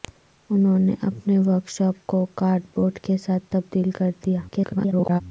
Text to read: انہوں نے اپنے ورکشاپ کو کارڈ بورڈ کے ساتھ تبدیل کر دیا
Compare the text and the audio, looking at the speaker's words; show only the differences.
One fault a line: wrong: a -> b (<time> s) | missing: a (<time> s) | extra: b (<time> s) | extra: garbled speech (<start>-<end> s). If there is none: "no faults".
extra: garbled speech (4.5-5.2 s)